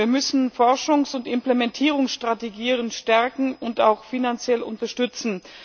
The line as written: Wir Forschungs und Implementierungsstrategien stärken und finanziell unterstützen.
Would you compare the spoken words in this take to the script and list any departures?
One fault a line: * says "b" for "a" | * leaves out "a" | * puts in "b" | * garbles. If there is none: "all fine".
* puts in "müssen"
* puts in "auch"